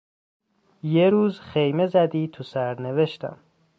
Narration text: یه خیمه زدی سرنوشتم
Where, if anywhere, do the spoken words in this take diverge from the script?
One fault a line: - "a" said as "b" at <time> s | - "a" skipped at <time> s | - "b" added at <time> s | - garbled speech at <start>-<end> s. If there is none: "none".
- "روز" added at 1.1 s
- "تو" added at 2.3 s